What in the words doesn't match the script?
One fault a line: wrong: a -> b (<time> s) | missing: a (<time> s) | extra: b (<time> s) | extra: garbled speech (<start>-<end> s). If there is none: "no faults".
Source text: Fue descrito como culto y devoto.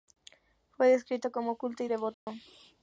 no faults